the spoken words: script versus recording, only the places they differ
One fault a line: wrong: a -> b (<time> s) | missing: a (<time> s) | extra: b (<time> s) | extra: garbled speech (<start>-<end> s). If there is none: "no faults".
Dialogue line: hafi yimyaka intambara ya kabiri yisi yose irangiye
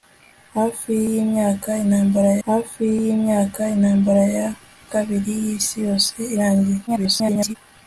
extra: hafi yimyaka intambara (2.5 s)
extra: garbled speech (6.9-7.6 s)